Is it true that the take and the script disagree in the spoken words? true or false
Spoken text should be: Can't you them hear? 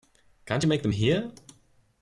true